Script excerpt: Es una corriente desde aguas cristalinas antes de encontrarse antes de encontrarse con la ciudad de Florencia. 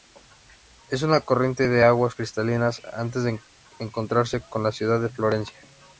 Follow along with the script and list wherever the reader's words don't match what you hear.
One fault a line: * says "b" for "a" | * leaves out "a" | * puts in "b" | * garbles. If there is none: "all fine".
* says "de" for "desde"
* leaves out "antes de encontrarse"